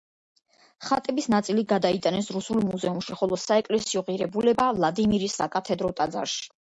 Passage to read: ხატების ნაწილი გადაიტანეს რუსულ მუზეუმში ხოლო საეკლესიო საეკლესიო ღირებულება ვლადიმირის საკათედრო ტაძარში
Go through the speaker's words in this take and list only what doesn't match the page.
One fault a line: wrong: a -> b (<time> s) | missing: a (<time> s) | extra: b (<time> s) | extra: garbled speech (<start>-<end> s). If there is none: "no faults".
missing: საეკლესიო (4.0 s)